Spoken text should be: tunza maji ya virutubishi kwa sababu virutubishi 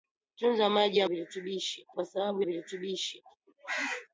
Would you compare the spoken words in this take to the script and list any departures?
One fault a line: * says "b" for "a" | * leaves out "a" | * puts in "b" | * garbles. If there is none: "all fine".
all fine